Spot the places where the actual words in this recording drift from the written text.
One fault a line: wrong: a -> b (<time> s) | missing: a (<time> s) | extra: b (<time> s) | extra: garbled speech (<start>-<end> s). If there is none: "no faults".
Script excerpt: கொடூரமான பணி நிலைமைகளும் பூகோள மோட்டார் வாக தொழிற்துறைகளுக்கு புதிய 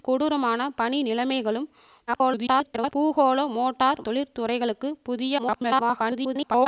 extra: garbled speech (2.1-2.9 s)
missing: வாக (4.0 s)
extra: garbled speech (5.4-6.7 s)